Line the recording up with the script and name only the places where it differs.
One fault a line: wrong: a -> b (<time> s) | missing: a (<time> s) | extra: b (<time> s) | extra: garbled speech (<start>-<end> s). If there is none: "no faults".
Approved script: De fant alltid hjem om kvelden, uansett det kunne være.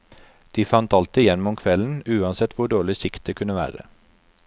extra: hvor dårlig sikt (2.6 s)